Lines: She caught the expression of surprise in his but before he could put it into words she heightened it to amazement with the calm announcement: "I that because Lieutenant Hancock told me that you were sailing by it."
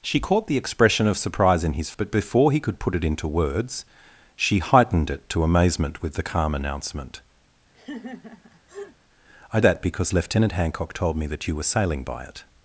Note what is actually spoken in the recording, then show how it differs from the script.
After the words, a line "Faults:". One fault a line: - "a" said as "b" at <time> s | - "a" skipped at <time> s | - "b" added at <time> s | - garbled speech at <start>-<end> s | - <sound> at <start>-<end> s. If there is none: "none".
She caught the expression of surprise in his but before he could put it into words she heightened it to amazement with the calm announcement: "I that because Lieutenant Hancock told me that you were sailing by it."
Faults:
- laugh at 7.7-9.0 s